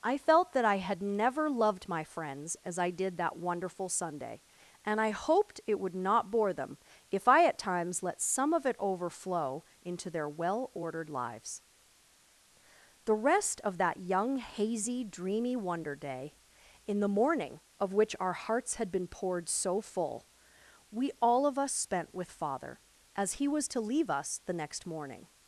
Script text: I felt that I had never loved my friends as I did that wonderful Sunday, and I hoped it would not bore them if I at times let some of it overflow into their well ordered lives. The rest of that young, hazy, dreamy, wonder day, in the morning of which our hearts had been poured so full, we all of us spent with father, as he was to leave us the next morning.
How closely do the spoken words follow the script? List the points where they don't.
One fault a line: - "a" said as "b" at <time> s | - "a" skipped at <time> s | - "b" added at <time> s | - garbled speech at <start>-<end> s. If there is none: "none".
none